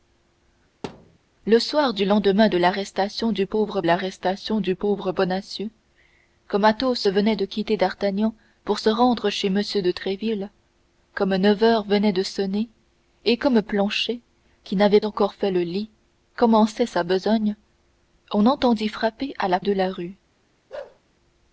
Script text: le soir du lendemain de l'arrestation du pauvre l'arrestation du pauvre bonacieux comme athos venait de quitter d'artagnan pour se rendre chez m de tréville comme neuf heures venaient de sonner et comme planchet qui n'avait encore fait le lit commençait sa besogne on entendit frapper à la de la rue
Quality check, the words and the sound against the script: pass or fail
fail